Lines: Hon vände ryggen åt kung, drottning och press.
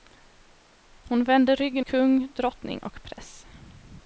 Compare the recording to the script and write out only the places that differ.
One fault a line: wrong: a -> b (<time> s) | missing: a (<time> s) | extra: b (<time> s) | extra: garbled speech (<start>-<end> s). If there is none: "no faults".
missing: åt (1.9 s)